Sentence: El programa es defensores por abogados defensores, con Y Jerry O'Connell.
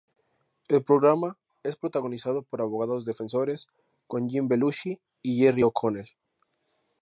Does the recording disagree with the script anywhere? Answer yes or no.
yes